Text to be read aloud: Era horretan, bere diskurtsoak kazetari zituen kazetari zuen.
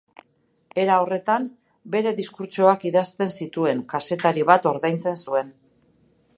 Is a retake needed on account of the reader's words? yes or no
yes